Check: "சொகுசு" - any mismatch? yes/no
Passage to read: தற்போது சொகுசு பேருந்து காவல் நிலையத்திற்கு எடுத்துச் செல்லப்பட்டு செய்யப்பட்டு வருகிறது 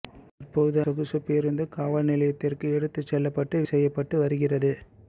no